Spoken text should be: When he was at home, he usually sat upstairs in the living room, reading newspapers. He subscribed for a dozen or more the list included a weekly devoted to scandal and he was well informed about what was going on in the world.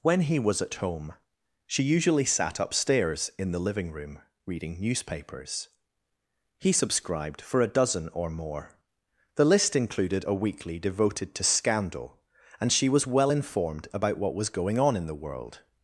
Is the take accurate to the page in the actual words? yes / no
no